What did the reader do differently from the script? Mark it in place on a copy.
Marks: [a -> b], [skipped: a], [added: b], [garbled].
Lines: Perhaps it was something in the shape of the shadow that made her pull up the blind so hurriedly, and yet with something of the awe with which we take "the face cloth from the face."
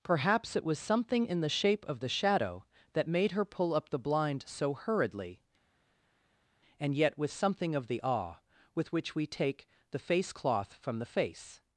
Perhaps it was something in the shape of the shadow that made her pull up the blind so hurriedly, and yet with something of the awe with which we take "the face cloth from the face."